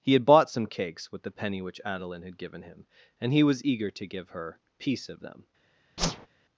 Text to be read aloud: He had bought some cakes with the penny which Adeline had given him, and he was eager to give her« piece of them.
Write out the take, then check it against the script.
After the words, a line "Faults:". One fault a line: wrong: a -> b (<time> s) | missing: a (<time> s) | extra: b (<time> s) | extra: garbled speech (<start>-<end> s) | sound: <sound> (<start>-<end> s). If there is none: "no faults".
He had bought some cakes with the penny which Adeline had given him, and he was eager to give her« piece of them.
Faults:
sound: whoosh (6.0-6.3 s)